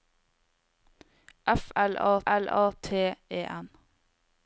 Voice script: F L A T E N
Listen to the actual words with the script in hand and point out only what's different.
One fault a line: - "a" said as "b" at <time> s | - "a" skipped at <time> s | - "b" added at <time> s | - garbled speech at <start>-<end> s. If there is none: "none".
- "L A" added at 2.3 s